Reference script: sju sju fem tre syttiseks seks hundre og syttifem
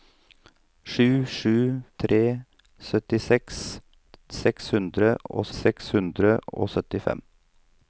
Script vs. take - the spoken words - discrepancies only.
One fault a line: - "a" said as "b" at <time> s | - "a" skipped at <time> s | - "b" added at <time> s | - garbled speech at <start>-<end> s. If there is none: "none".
- "fem" skipped at 1.5 s
- "seks hundre og" added at 5.6 s